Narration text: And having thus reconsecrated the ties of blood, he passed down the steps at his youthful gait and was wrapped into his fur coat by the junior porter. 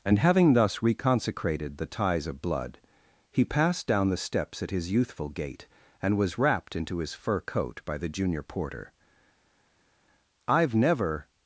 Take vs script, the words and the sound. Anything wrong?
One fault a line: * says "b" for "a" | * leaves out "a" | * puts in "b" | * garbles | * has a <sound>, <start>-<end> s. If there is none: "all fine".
* puts in "I've never"